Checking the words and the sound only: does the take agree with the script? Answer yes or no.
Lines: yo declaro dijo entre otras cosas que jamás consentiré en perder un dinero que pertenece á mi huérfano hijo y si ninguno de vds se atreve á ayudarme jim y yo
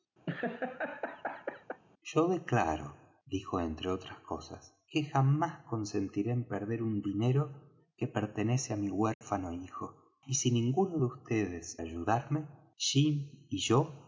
no